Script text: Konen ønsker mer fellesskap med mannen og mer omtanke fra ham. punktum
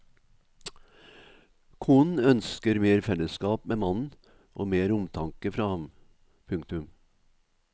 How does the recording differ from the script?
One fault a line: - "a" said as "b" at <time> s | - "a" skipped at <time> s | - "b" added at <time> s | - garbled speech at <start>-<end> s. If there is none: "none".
none